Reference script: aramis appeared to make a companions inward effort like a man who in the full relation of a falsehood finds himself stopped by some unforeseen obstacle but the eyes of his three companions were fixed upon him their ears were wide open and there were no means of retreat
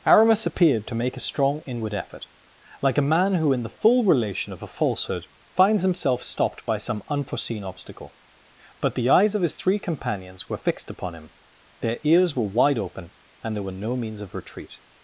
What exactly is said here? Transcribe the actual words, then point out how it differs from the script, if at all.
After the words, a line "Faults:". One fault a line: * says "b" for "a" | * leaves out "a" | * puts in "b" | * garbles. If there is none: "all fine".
aramis appeared to make a strong inward effort like a man who in the full relation of a falsehood finds himself stopped by some unforeseen obstacle but the eyes of his three companions were fixed upon him their ears were wide open and there were no means of retreat
Faults:
* says "strong" for "companions"